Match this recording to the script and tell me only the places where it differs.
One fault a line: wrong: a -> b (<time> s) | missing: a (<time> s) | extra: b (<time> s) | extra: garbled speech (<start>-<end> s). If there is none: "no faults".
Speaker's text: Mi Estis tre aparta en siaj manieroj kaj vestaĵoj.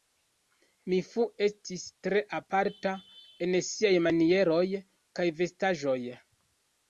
extra: Fu (1.1 s)